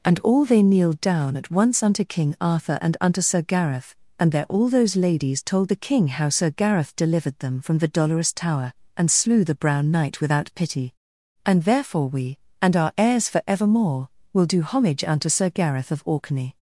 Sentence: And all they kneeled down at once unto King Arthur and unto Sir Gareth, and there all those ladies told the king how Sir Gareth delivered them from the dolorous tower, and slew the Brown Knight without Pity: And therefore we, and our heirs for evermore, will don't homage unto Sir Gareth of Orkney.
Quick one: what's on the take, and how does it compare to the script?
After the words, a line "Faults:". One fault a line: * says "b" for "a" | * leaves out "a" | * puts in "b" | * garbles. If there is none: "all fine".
And all they kneeled down at once unto King Arthur and unto Sir Gareth, and there all those ladies told the king how Sir Gareth delivered them from the dolorous tower, and slew the Brown Knight without Pity: And therefore we, and our heirs for evermore, will do homage unto Sir Gareth of Orkney.
Faults:
* says "do" for "don't"